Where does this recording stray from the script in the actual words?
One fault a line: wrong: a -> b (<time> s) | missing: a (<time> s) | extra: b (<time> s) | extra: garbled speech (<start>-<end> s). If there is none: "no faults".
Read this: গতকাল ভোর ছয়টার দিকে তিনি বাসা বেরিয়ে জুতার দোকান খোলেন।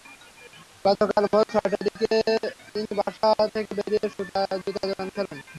extra: থেকে (3.5 s)